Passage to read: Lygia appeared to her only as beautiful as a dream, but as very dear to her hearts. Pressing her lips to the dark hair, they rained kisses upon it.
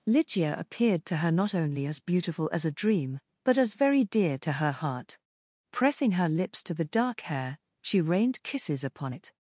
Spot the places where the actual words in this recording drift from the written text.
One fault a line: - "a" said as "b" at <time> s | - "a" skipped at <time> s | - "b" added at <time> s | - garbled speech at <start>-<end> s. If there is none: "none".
- "not" added at 1.3 s
- "hearts" said as "heart" at 4.7 s
- "they" said as "she" at 7.8 s